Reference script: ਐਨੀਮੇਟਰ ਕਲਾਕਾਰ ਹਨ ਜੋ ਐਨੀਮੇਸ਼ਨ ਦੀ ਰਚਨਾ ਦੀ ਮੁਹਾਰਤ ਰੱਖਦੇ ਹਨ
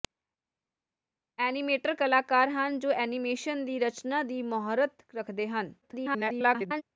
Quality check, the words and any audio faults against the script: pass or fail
fail